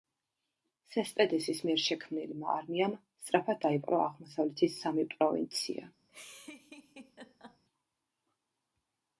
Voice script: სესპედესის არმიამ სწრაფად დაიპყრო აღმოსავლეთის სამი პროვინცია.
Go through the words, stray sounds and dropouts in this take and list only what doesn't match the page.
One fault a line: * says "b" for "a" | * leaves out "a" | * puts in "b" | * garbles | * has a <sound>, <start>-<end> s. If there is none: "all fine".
* puts in "მიერ შექმნილმა"
* has a laugh, 6.1-7.6 s